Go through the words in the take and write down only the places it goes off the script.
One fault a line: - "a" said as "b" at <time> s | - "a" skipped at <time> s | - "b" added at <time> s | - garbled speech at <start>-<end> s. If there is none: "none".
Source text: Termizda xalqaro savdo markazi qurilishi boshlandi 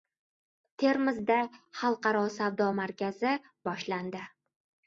- "qurilishi" skipped at 3.3 s